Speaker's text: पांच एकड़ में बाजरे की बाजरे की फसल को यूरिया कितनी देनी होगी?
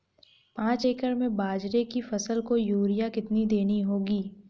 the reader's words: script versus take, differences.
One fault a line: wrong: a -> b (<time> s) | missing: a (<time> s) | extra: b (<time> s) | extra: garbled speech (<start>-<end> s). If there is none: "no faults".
missing: बाजरे की (2.0 s)